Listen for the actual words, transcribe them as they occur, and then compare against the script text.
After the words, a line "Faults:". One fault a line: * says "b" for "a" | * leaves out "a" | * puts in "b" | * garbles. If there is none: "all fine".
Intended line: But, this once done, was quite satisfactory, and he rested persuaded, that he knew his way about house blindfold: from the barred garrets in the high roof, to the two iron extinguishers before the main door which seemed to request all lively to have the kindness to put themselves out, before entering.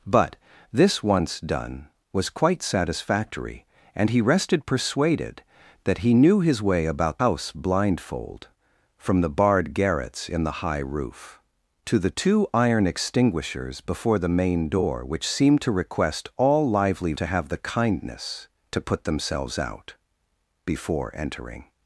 But, this once done, was quite satisfactory, and he rested persuaded, that he knew his way about house blindfold: from the barred garrets in the high roof, to the two iron extinguishers before the main door which seemed to request all lively to have the kindness to put themselves out, before entering.
Faults:
all fine